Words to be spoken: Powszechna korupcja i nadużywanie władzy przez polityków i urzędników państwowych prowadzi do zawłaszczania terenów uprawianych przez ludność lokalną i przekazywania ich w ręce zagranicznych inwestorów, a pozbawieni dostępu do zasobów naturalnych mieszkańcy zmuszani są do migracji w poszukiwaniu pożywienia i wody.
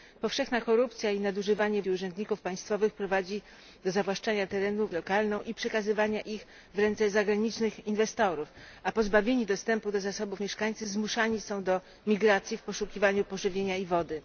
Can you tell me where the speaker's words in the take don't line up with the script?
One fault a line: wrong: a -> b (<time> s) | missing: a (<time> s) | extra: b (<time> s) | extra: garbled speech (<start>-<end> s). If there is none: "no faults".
missing: władzy przez polityków (1.8 s)
missing: uprawianych przez ludność (4.9 s)
missing: naturalnych (10.4 s)